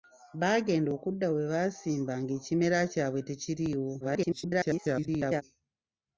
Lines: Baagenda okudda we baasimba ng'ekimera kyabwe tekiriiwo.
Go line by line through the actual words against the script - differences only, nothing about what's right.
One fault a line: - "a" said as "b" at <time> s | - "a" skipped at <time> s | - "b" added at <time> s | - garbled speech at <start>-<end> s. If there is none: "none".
- garbled speech at 4.0-5.4 s